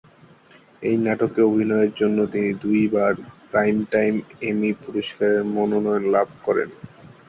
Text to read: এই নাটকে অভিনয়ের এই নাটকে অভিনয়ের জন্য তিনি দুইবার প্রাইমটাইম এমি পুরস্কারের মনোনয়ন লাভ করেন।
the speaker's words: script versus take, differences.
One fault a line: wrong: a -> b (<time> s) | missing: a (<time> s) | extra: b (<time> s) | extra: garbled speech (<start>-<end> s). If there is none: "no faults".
missing: এই নাটকে অভিনয়ের (1.9 s)